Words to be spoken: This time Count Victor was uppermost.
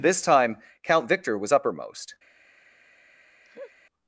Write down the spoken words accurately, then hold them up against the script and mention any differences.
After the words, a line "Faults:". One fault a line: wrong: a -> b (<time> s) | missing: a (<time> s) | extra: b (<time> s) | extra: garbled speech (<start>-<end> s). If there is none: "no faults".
This time Count Victor was uppermost.
Faults:
no faults